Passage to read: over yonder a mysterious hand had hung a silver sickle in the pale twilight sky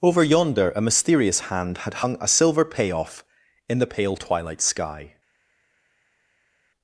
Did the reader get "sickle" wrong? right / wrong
wrong